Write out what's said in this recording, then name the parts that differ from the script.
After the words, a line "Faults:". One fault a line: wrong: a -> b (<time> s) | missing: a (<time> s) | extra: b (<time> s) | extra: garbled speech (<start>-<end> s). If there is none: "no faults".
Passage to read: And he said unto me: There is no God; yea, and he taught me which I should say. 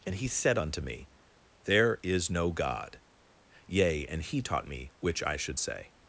And he said unto me: There is no God; yea, and he taught me which I should say.
Faults:
no faults